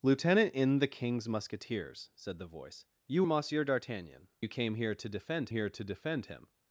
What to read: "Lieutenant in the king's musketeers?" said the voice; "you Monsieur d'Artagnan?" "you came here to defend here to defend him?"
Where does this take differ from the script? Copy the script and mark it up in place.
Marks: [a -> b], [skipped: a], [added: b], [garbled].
"Lieutenant in the king's musketeers?" said the voice; "you Monsieur d'Artagnan?" "you came here to defend here to defend him?"